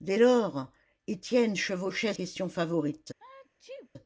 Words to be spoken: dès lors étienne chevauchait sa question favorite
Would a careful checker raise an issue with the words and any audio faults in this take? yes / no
yes